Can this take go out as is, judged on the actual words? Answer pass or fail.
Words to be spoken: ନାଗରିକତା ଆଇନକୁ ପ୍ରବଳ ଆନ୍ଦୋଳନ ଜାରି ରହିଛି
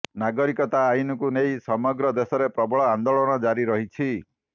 fail